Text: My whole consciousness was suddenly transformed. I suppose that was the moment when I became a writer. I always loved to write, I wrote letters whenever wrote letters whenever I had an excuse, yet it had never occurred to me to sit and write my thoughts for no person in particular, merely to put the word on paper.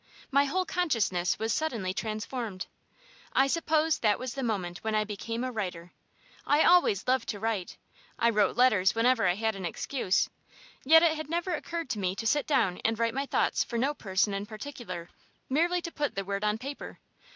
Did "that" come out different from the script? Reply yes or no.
no